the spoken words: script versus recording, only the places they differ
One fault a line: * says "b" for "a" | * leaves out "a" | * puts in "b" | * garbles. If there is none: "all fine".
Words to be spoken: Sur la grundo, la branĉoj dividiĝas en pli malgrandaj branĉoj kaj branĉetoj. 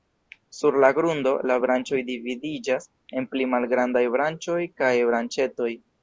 all fine